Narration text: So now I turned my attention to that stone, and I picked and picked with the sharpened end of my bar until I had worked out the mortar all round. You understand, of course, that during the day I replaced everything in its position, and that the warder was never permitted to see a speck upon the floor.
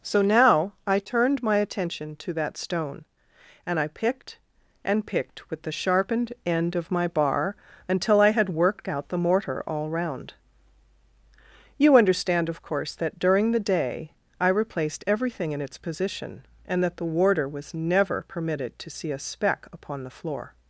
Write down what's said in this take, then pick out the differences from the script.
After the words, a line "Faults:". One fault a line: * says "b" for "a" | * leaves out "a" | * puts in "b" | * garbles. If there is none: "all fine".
So now I turned my attention to that stone, and I picked and picked with the sharpened end of my bar until I had worked out the mortar all round. You understand, of course, that during the day I replaced everything in its position, and that the warder was never permitted to see a speck upon the floor.
Faults:
all fine